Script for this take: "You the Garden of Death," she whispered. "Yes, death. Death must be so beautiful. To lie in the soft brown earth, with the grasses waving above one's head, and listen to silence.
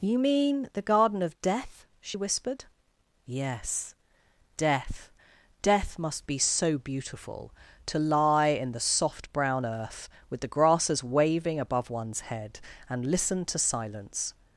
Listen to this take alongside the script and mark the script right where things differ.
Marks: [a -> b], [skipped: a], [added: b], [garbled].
"You [added: mean] the Garden of Death," she whispered. "Yes, death. Death must be so beautiful. To lie in the soft brown earth, with the grasses waving above one's head, and listen to silence.